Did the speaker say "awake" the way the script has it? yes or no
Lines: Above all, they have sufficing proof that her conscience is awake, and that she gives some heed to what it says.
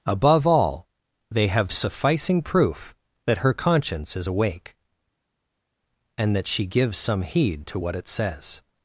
yes